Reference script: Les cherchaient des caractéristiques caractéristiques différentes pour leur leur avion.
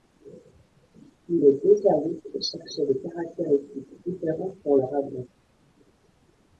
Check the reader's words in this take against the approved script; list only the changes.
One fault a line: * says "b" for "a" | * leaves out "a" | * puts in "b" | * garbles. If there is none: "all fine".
* puts in "deux services"
* leaves out "caractéristiques"
* leaves out "leur"